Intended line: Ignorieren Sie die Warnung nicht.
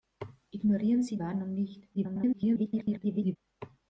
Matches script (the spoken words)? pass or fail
fail